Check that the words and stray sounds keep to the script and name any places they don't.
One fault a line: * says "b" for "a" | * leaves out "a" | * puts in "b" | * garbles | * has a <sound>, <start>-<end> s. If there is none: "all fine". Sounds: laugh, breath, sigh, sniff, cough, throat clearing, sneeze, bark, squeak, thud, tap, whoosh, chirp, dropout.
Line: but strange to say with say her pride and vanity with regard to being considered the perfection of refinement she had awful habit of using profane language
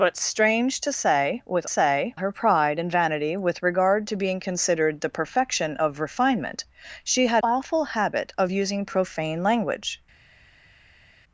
all fine